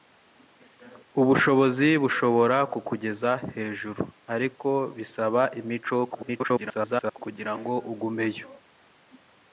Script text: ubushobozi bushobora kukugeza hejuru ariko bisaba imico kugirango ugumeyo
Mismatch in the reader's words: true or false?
true